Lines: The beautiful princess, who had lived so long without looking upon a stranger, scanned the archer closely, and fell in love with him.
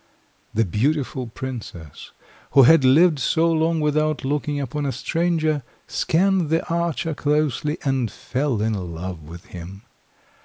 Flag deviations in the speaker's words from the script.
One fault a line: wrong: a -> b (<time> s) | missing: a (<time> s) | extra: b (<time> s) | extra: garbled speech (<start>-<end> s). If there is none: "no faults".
no faults